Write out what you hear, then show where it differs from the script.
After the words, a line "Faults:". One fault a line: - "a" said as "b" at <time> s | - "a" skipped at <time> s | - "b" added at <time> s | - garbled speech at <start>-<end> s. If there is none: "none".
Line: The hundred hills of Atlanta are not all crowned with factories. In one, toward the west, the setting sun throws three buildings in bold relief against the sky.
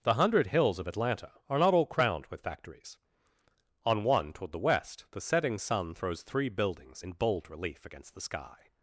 The hundred hills of Atlanta are not all crowned with factories. On one, toward the west, the setting sun throws three buildings in bold relief against the sky.
Faults:
- "In" said as "On" at 3.9 s